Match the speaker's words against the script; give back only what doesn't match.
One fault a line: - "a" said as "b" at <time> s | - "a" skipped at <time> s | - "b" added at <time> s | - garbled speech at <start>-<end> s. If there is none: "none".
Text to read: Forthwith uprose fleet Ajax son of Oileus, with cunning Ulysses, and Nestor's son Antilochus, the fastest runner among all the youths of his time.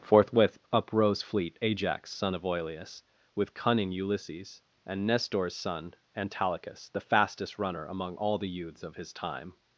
none